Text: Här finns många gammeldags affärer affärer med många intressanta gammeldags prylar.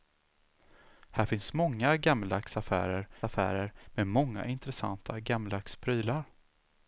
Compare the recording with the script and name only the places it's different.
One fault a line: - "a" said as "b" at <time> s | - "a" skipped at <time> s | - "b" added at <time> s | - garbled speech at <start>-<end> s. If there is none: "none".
none